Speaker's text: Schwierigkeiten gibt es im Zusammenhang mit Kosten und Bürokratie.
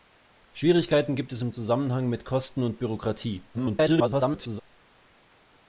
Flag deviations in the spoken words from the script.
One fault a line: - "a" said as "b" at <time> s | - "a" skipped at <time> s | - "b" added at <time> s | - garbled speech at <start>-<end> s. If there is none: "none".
- garbled speech at 3.5-4.6 s